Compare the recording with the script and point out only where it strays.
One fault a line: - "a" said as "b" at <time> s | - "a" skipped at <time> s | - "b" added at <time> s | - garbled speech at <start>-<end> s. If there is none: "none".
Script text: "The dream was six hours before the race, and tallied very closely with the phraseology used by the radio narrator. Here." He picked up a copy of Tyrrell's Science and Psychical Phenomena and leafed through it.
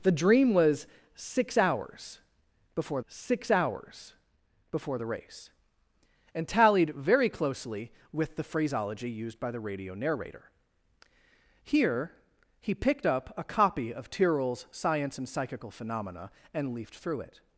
- "six hours before" added at 3.1 s